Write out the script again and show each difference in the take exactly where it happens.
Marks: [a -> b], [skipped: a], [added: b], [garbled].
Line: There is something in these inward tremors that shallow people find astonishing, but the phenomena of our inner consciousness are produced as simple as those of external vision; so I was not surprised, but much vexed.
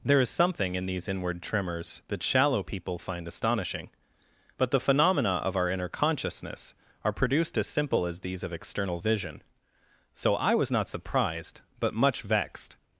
There is something in these inward tremors that shallow people find astonishing, but the phenomena of our inner consciousness are produced as simple as [those -> these] of external vision; so I was not surprised, but much vexed.